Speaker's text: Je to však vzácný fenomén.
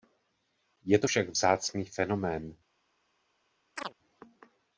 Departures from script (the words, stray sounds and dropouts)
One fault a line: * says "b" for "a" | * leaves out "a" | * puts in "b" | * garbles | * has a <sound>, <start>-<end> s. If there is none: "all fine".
* has a chirp, 3.8-3.9 s